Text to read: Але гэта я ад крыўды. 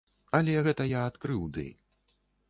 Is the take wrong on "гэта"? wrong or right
right